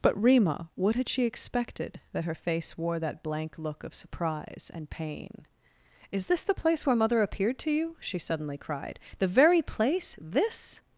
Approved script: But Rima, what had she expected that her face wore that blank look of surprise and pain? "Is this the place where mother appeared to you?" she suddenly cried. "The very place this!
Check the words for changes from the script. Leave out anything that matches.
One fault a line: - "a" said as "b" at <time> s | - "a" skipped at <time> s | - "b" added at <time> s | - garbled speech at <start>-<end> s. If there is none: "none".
none